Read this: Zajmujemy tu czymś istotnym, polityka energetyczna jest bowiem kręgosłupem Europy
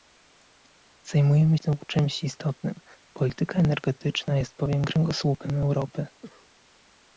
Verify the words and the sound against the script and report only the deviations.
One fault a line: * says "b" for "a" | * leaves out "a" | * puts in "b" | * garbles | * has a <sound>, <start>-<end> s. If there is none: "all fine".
* has a cough, 6.2-6.5 s